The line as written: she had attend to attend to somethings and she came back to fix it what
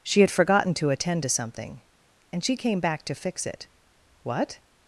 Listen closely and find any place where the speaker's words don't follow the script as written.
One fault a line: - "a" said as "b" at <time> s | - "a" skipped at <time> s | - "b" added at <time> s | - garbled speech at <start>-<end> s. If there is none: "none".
- "attend" said as "forgotten" at 0.3 s
- "somethings" said as "something" at 1.3 s